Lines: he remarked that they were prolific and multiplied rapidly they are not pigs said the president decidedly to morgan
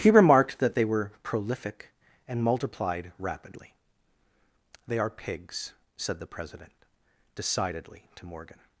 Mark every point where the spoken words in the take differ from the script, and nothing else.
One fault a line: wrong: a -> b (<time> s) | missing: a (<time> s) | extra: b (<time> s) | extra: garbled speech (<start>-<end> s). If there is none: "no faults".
missing: not (5.1 s)